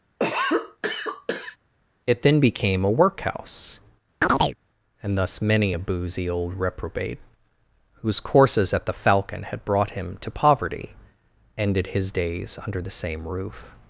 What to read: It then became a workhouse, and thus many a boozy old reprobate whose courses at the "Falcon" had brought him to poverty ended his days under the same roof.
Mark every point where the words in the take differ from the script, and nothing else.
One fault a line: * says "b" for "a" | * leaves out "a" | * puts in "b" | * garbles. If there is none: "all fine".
all fine